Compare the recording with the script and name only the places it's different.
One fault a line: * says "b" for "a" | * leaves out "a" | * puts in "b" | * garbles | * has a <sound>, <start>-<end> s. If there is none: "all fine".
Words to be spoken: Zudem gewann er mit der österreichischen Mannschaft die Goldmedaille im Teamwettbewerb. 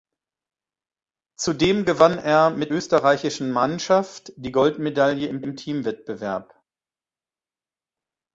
* leaves out "der"
* puts in "im"